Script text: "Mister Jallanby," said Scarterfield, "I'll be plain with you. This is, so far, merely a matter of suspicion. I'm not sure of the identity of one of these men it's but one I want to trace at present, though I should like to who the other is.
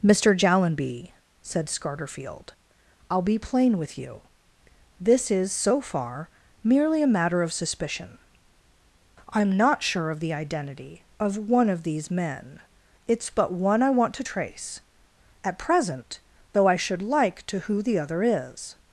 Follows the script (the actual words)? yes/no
yes